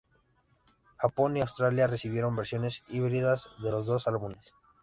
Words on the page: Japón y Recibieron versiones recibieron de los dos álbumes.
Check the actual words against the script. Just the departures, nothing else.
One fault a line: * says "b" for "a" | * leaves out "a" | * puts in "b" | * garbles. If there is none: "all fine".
* puts in "Australia"
* says "híbridas" for "recibieron"